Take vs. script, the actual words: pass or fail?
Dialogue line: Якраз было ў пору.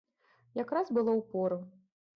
pass